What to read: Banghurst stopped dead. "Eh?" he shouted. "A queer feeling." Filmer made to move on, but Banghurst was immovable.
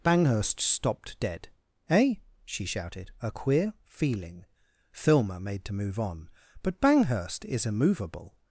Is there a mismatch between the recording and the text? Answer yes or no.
yes